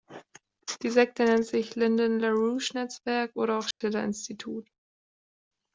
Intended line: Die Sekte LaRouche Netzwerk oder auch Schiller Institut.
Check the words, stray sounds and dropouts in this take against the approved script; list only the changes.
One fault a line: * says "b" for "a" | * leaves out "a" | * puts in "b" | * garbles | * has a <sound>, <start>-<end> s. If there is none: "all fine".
* puts in "nennt sich Lyndon"
* has a dropout, 3.7-3.8 s